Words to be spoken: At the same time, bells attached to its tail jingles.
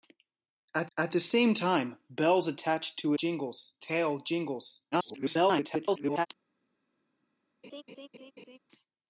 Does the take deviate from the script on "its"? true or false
true